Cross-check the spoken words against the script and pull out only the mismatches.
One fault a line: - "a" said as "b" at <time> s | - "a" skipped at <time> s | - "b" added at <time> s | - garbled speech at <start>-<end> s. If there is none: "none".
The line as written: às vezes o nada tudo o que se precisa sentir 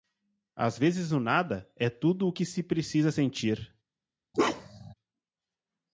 - "é" added at 1.8 s